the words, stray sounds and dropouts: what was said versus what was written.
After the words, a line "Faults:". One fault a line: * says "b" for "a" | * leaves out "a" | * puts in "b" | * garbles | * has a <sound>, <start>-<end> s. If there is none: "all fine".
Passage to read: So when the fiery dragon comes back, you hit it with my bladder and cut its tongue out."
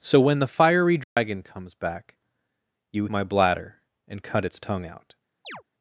So when the fiery dragon comes back, you my bladder and cut its tongue out."
Faults:
* has a dropout, 1.0-1.2 s
* leaves out "hit it with"
* has a chirp, 5.4-5.6 s